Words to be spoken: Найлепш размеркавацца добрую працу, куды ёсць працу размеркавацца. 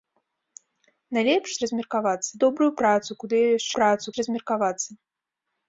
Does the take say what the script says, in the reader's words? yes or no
yes